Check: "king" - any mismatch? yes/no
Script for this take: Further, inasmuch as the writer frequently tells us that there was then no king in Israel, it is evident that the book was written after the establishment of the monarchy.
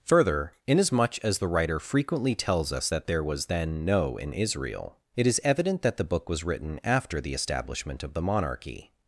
yes